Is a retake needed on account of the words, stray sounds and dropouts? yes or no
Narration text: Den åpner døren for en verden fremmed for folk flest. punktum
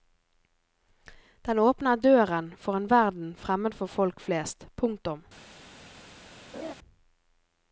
yes